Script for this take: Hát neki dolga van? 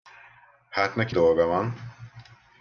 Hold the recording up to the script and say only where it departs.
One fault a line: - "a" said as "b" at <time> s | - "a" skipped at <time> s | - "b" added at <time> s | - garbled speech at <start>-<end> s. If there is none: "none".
none